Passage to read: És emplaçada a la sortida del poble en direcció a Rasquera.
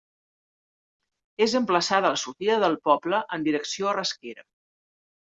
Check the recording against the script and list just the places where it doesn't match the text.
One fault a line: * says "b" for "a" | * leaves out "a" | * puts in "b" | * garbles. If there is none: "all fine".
all fine